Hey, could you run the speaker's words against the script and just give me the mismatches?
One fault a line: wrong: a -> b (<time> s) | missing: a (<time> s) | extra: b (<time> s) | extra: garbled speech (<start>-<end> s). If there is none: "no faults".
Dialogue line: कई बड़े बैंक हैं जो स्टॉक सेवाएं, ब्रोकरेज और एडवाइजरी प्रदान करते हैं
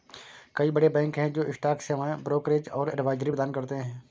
no faults